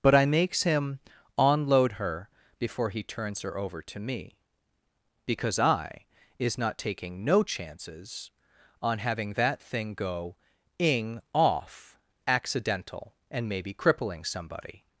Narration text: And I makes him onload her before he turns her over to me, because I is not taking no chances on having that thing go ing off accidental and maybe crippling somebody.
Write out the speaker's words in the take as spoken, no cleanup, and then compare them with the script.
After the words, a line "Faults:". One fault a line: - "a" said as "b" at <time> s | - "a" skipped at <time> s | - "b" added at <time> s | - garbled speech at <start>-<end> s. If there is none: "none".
But I makes him onload her before he turns her over to me, because I is not taking no chances on having that thing go ing off accidental and maybe crippling somebody.
Faults:
- "And" said as "But" at 0.0 s